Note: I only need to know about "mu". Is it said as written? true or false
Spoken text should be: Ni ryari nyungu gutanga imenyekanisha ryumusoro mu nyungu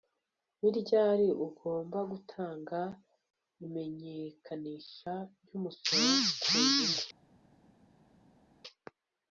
false